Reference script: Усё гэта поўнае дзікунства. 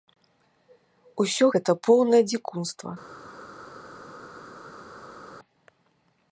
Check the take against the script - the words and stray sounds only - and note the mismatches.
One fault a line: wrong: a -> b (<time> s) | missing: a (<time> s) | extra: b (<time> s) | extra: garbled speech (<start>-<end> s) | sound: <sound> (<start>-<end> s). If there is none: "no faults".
no faults